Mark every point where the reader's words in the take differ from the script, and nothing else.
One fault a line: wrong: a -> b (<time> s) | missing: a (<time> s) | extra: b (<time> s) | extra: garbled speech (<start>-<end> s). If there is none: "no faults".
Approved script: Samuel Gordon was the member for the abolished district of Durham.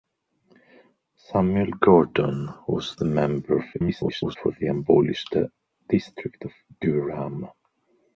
extra: garbled speech (3.7-4.4 s)